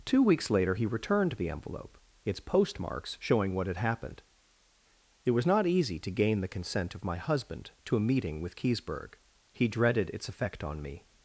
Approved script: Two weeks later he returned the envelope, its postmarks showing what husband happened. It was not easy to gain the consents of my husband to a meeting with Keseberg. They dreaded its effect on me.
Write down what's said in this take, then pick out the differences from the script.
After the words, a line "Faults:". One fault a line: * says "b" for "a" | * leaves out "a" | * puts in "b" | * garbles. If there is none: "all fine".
Two weeks later he returned the envelope, its postmarks showing what had happened. It was not easy to gain the consent of my husband to a meeting with Keseberg. He dreaded its effect on me.
Faults:
* says "had" for "husband"
* says "consent" for "consents"
* says "He" for "They"